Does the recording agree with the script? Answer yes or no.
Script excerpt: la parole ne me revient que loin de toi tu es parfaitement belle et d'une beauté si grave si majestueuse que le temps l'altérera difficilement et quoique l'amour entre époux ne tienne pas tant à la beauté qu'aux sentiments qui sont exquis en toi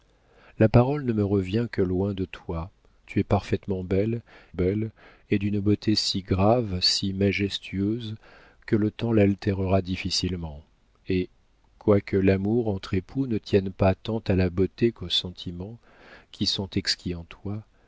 no